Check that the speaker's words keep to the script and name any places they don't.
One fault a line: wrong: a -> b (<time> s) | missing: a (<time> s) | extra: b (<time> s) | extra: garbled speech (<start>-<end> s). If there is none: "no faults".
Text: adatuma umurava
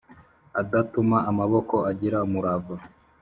extra: amaboko agira (1.3 s)